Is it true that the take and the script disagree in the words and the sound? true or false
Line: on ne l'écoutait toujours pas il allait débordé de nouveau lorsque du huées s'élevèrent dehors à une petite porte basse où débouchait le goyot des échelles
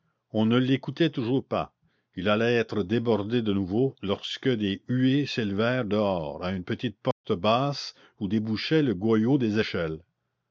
true